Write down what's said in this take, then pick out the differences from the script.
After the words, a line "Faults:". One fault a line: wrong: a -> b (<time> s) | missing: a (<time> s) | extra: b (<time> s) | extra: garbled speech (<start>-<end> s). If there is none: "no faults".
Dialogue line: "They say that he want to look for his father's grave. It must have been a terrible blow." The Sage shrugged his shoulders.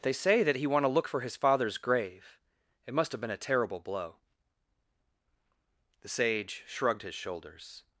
"They say that he want to look for his father's grave. It must have been a terrible blow." The Sage shrugged his shoulders.
Faults:
no faults